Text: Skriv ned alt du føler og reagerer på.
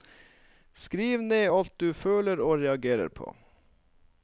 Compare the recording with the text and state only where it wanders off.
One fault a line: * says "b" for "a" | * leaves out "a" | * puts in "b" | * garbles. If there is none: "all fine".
all fine